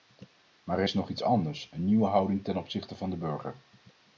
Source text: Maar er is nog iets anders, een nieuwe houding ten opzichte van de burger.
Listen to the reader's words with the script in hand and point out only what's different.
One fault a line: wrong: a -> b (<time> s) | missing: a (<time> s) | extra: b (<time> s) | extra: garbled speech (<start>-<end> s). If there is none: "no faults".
no faults